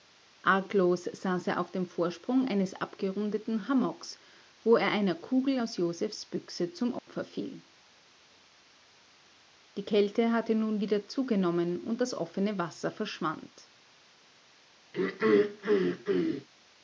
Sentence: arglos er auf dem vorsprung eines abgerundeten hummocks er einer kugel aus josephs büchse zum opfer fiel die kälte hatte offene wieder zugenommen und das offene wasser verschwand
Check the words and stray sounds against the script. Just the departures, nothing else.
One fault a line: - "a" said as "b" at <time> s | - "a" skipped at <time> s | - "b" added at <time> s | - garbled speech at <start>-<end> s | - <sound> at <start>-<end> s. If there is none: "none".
- "saß" added at 1.0 s
- "wo" added at 4.6 s
- dropout at 7.0-7.1 s
- "offene" said as "nun" at 10.5 s
- throat clearing at 14.9-16.5 s